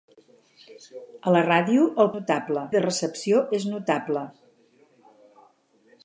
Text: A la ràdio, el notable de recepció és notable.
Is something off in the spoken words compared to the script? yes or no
no